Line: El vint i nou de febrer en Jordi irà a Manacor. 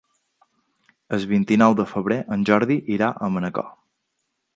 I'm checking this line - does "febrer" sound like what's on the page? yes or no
yes